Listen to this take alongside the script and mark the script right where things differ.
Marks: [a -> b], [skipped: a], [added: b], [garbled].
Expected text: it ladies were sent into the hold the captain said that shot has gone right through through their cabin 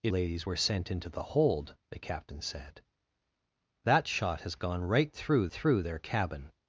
it ladies were sent into the hold the captain said that shot has gone right through through their cabin